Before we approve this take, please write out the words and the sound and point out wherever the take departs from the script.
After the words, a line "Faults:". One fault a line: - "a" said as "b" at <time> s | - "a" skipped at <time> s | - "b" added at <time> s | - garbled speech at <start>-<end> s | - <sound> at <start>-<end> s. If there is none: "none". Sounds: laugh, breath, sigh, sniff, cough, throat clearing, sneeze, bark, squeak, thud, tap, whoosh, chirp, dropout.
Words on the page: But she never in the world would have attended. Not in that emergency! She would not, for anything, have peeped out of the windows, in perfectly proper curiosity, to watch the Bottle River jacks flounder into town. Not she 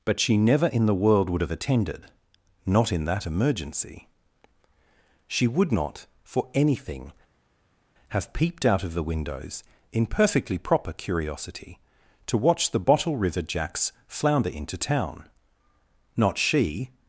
But she never in the world would have attended. Not in that emergency! She would not, for anything, have peeped out of the windows, in perfectly proper curiosity, to watch the Bottle River jacks flounder into town. Not she
Faults:
none